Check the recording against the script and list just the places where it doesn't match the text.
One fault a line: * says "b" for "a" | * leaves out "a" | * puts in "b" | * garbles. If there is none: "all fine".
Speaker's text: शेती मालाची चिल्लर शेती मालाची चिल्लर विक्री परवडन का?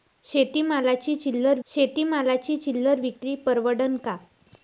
all fine